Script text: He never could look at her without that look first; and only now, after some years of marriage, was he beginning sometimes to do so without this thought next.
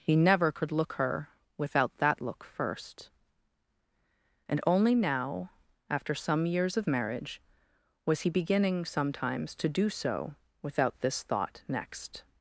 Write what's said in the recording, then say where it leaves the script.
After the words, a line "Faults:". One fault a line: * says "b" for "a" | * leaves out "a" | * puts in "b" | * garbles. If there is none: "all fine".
He never could look her without that look first; and only now, after some years of marriage, was he beginning sometimes to do so without this thought next.
Faults:
* leaves out "at"